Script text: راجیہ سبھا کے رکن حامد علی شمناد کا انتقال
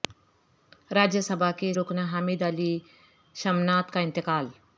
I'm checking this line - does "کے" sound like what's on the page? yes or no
yes